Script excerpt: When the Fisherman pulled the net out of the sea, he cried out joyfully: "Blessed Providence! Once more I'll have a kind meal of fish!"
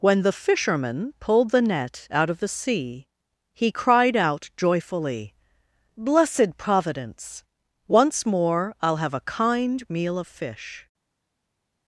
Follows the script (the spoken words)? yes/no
yes